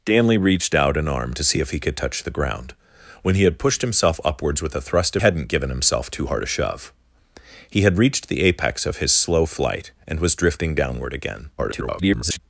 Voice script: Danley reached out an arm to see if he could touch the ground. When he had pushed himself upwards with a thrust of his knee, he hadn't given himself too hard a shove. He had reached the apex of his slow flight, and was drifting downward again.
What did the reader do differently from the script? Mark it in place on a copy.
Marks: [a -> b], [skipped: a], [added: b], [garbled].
Danley reached out an arm to see if he could touch the ground. When he had pushed himself upwards with a thrust of [skipped: his knee, he] hadn't given himself too hard a shove. He had reached the apex of his slow flight, and was drifting downward again. [garbled]